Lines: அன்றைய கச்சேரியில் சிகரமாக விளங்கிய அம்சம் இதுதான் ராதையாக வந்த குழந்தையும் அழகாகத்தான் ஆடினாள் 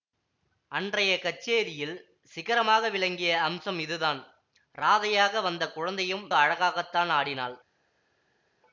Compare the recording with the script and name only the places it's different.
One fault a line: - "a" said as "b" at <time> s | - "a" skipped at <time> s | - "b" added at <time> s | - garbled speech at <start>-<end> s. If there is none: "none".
none